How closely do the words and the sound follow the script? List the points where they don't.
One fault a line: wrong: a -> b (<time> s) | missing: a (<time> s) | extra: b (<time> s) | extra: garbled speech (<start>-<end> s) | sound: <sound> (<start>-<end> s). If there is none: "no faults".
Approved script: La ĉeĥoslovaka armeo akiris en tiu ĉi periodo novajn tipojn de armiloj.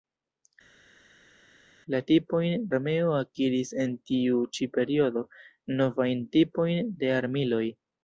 wrong: ĉeĥoslovaka -> tipojn (2.1 s)